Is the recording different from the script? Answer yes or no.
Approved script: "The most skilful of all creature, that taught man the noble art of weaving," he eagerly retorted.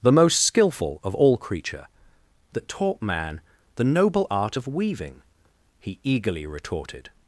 no